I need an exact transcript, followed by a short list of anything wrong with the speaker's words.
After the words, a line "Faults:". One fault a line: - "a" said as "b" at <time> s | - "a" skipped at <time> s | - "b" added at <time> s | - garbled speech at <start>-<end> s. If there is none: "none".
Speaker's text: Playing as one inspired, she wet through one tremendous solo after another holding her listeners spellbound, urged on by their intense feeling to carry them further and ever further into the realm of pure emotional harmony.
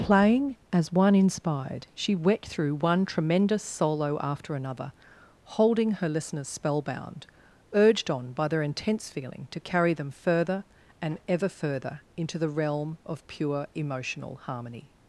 Playing as one inspired, she wet through one tremendous solo after another holding her listeners spellbound, urged on by their intense feeling to carry them further and ever further into the realm of pure emotional harmony.
Faults:
none